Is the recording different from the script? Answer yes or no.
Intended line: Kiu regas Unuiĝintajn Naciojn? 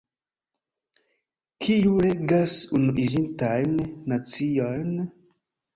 no